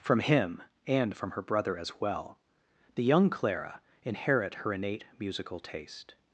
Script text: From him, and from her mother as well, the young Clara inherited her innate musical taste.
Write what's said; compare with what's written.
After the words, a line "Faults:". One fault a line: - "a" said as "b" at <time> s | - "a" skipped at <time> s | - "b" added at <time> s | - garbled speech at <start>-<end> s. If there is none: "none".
From him, and from her brother as well, the young Clara inherit her innate musical taste.
Faults:
- "mother" said as "brother" at 1.4 s
- "inherited" said as "inherit" at 4.0 s